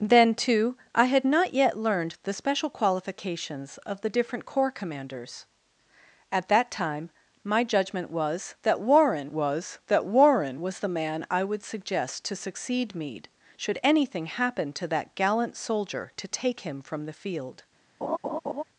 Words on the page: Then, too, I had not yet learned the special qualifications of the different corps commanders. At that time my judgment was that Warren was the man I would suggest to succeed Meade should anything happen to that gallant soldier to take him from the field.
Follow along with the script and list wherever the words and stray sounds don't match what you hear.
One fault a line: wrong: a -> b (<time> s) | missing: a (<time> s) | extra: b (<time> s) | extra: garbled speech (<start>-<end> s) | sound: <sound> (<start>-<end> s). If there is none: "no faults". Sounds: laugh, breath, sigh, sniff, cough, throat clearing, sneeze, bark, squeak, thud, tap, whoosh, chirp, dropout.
extra: that Warren was (9.9 s)
sound: laugh (18.0-18.6 s)